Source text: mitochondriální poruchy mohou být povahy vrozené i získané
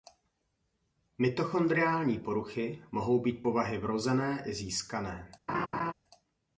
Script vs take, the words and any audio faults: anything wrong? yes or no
yes